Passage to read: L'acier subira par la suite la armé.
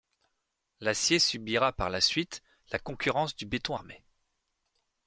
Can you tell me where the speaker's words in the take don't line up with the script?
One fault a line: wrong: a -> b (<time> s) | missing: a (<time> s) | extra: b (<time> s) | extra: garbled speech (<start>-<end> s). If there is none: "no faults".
extra: concurrence du béton (2.8 s)